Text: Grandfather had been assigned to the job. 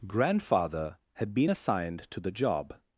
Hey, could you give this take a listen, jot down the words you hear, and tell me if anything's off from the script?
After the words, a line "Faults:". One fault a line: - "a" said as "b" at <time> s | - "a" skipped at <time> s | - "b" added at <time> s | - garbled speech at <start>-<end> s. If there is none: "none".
Grandfather had been assigned to the job.
Faults:
none